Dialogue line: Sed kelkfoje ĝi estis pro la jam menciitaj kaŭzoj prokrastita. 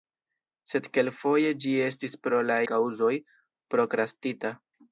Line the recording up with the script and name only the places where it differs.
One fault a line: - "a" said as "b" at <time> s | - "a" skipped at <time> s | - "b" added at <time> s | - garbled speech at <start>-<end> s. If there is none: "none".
- "jam menciitaj" skipped at 2.5 s